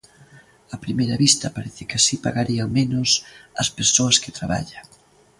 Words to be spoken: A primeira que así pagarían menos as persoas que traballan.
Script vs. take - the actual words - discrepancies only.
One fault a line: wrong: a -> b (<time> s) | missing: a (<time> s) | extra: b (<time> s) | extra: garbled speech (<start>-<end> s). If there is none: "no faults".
extra: vista parece (1.2 s)